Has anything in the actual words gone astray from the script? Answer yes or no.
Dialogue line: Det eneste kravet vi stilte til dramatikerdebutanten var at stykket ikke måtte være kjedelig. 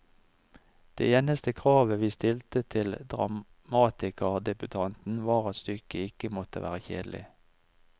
no